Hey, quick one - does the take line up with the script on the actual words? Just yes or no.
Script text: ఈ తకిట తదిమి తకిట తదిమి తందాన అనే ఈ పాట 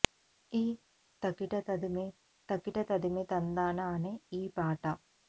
yes